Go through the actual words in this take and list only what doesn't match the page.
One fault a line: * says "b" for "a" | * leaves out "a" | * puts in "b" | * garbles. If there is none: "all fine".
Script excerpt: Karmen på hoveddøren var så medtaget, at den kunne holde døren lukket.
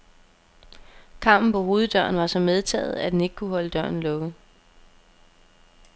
* puts in "ikke"